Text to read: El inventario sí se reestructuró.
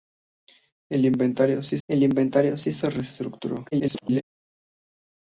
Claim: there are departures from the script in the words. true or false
true